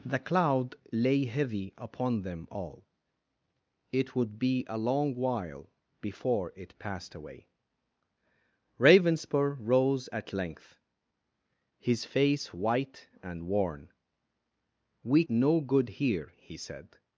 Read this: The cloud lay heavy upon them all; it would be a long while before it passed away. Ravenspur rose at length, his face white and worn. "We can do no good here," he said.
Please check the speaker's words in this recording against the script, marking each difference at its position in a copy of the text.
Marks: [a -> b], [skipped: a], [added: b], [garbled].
The cloud lay heavy upon them all; it would be a long while before it passed away. Ravenspur rose at length, his face white and worn. "We [skipped: can do] no good here," he said.